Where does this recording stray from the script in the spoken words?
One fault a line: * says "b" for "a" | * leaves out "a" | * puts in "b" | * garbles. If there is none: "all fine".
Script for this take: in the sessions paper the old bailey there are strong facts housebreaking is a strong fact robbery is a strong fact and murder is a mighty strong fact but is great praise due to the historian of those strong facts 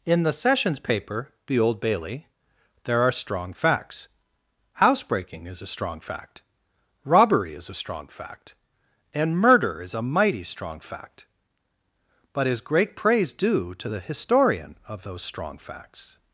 all fine